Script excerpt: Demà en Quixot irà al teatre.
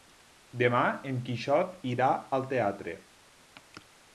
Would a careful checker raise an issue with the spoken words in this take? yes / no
no